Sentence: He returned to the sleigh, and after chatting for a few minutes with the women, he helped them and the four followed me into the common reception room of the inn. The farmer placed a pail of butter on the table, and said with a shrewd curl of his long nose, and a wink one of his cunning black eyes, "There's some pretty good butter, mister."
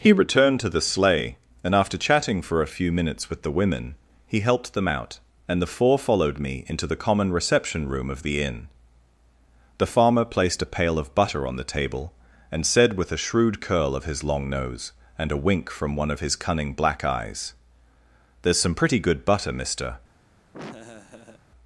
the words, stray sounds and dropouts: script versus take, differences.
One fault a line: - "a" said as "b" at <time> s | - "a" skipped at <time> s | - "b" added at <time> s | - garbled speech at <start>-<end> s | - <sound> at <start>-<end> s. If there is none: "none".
- "out" added at 4.9 s
- "from" added at 15.7 s
- laugh at 20.5-21.4 s